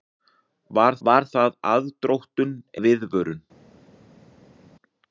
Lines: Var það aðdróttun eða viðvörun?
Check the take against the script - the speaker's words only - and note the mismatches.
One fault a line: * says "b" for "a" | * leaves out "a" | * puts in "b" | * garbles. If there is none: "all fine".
* puts in "var"
* leaves out "eða"